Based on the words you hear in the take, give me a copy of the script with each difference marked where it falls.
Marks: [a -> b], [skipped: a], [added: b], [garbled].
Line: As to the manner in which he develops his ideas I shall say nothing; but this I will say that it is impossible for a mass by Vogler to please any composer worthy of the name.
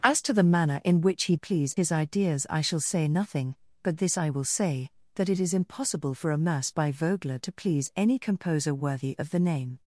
As to the manner in which he [develops -> please] his ideas I shall say nothing; but this I will say that it is impossible for a mass by Vogler to please any composer worthy of the name.